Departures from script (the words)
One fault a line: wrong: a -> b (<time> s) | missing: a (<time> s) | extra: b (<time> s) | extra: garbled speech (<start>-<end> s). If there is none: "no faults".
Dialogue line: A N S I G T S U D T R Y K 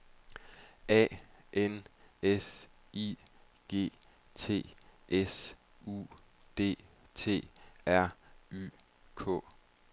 no faults